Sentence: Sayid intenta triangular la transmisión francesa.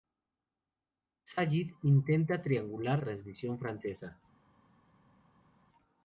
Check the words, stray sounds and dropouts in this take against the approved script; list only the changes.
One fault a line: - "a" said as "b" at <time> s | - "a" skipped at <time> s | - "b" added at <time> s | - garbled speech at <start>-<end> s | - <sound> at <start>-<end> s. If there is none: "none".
- "la" skipped at 3.0 s